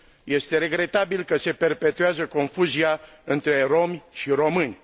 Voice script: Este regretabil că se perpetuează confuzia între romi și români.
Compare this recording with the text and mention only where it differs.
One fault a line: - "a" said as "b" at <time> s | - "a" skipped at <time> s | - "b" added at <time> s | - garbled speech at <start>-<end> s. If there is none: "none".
none